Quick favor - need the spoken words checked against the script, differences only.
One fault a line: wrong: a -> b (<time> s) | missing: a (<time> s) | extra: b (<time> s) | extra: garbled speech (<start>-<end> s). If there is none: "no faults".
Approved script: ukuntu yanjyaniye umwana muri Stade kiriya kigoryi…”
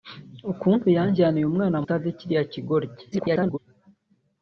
missing: muri (1.8 s)
extra: garbled speech (3.1-3.6 s)